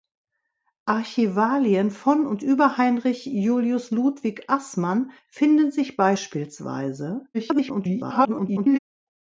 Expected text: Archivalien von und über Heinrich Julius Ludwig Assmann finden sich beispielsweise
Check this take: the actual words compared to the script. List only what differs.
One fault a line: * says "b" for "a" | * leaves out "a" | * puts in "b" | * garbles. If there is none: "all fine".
* garbles